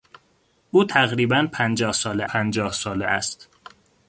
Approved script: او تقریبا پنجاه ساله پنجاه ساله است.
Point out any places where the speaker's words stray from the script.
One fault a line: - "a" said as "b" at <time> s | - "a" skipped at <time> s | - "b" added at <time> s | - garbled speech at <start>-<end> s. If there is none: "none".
none